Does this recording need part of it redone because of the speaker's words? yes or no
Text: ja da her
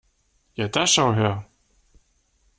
yes